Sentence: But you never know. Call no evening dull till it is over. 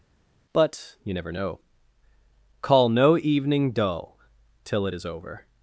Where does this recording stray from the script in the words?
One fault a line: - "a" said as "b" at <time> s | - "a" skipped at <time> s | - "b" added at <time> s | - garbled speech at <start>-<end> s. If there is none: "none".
none